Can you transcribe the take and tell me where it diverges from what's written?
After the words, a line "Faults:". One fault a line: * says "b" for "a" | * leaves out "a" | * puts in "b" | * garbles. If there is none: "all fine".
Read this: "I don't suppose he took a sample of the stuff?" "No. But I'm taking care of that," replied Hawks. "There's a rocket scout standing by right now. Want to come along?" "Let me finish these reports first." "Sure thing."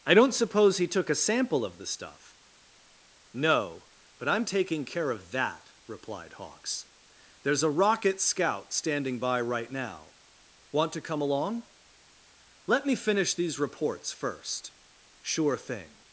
"I don't suppose he took a sample of the stuff?" "No. But I'm taking care of that," replied Hawks. "There's a rocket scout standing by right now. Want to come along?" "Let me finish these reports first." "Sure thing."
Faults:
all fine